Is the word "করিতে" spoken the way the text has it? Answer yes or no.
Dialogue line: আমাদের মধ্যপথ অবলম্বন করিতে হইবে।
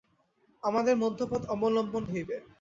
no